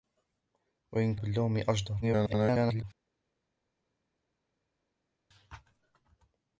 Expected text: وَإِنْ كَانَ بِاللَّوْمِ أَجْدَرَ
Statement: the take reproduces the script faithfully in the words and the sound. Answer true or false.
false